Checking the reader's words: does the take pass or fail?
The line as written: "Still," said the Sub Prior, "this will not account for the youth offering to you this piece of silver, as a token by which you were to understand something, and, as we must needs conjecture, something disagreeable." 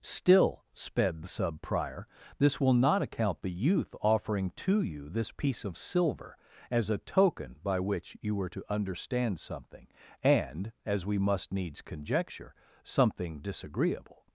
fail